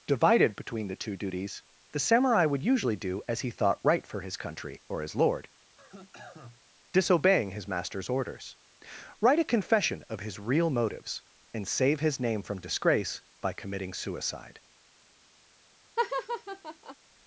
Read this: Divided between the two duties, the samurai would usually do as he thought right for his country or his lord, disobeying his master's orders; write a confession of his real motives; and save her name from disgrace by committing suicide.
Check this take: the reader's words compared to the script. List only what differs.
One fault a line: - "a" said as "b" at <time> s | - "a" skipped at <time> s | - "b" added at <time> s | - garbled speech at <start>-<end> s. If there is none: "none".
- "her" said as "his" at 12.0 s